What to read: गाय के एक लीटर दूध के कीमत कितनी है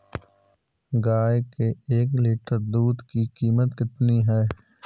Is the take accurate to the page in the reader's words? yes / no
no